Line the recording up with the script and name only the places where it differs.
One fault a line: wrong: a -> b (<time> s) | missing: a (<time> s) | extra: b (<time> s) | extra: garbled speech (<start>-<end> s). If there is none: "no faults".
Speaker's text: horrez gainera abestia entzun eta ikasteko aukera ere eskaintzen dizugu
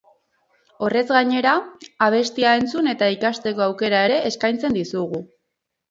no faults